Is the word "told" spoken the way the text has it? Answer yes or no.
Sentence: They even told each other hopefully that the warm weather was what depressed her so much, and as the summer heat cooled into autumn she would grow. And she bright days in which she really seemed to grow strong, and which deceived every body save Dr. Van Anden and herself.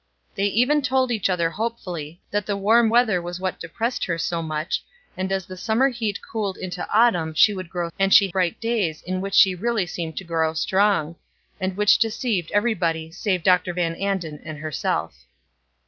yes